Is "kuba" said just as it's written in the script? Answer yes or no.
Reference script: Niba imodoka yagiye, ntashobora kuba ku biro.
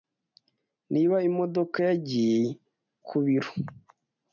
no